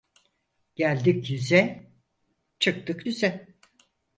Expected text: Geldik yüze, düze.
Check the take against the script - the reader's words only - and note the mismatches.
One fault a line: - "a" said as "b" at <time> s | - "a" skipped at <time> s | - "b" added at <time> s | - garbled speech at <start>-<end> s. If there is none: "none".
- "çıktık" added at 2.6 s